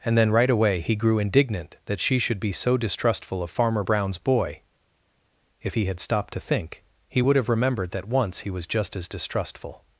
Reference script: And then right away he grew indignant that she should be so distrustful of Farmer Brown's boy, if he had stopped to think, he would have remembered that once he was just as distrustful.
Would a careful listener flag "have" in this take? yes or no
no